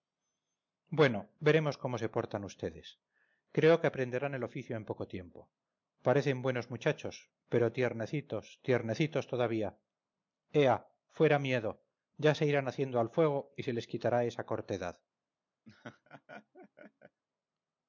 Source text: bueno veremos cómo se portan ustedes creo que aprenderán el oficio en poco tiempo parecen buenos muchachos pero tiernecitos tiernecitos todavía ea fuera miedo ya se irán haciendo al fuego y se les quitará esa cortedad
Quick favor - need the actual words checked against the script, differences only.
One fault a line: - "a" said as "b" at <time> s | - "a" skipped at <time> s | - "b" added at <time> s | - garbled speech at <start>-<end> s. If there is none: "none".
none